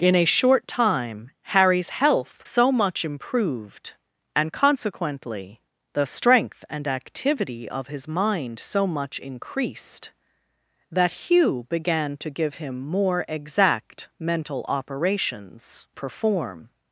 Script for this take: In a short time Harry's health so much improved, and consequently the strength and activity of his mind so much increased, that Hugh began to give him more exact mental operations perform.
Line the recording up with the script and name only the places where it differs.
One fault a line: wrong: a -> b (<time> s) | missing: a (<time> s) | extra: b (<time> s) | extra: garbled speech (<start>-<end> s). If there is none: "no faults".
no faults